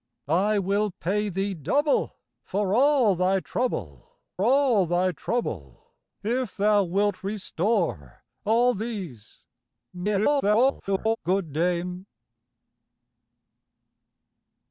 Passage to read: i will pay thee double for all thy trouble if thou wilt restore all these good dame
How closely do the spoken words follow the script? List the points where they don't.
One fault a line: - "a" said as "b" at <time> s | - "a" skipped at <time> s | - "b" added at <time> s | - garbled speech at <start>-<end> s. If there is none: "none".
- "all thy trouble" added at 4.4 s
- garbled speech at 9.9-11.2 s